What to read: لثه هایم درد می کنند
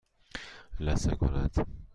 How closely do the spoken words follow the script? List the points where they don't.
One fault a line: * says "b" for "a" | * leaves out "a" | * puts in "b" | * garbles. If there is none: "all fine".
* leaves out "هایم درد"